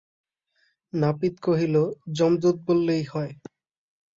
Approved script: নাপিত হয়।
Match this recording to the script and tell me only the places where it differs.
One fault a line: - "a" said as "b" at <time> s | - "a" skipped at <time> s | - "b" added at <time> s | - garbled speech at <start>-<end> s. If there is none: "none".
- "কহিল যমদূত বললেই" added at 1.4 s